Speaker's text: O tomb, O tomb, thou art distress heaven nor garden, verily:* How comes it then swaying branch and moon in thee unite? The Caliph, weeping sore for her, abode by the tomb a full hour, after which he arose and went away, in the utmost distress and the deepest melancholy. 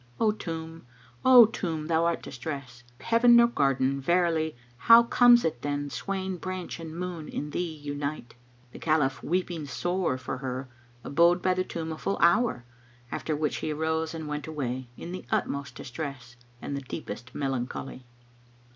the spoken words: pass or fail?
pass